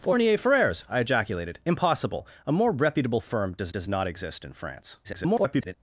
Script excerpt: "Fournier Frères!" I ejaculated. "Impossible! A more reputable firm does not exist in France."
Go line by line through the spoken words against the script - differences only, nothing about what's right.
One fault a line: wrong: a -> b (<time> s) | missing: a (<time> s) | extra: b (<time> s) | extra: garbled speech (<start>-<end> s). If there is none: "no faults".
extra: does (3.7 s)
extra: garbled speech (5.0-5.7 s)